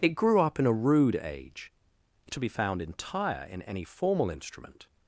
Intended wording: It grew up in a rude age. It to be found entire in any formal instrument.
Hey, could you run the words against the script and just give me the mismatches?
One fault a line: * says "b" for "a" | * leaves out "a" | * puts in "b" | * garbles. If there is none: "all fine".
all fine